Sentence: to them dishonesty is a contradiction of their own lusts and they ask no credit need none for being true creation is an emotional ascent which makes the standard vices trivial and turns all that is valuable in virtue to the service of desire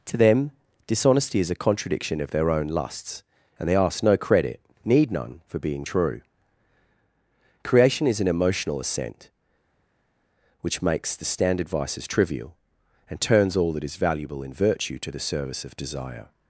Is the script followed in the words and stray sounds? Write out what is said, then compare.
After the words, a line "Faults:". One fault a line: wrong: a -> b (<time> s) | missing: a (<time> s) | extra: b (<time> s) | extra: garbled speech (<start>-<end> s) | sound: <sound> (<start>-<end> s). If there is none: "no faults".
to them dishonesty is a contradiction of their own lusts and they ask no credit need none for being true creation is an emotional ascent which makes the standard vices trivial and turns all that is valuable in virtue to the service of desire
Faults:
no faults